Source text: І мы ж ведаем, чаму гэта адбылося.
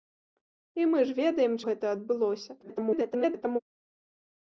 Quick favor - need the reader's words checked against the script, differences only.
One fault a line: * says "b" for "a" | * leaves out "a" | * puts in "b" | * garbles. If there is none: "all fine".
* leaves out "чаму"
* garbles